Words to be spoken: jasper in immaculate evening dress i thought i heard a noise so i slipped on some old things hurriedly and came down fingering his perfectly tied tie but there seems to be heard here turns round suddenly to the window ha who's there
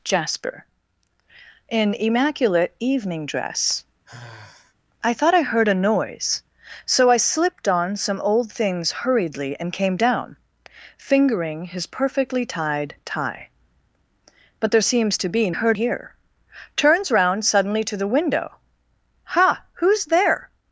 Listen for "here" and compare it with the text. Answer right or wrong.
right